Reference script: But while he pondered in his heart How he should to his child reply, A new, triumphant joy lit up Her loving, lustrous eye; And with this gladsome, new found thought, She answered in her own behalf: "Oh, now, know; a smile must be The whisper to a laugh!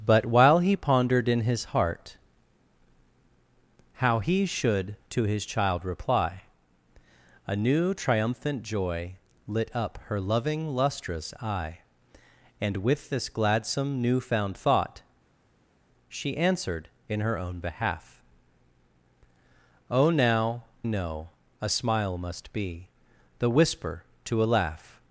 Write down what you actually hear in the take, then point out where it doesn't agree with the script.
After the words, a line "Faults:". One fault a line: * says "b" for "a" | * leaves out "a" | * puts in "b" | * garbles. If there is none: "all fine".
But while he pondered in his heart How he should to his child reply, A new, triumphant joy lit up Her loving, lustrous eye; And with this gladsome, new found thought, She answered in her own behalf: "Oh, now, know; a smile must be The whisper to a laugh!
Faults:
all fine